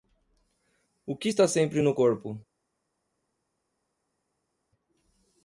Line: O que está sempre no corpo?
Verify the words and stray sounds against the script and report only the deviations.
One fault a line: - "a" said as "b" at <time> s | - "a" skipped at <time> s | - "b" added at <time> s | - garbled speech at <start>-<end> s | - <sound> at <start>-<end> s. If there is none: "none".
none